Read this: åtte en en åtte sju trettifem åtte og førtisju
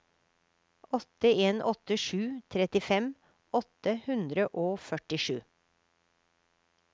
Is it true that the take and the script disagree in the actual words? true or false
true